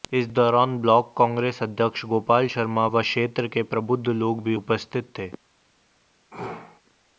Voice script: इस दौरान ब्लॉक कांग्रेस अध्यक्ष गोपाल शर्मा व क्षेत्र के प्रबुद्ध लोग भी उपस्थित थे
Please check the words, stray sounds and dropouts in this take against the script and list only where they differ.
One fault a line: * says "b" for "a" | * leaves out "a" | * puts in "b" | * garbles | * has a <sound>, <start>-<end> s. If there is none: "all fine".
* has a sneeze, 6.3-6.8 s